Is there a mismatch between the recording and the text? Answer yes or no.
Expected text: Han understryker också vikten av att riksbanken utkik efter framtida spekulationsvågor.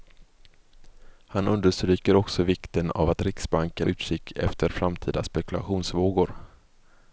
no